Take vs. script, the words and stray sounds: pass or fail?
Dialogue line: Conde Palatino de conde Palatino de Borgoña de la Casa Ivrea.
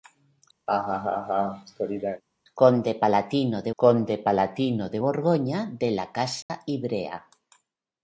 fail